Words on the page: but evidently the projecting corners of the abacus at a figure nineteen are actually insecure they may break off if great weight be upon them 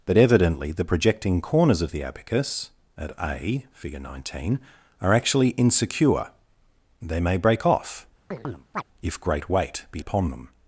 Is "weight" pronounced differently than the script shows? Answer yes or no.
no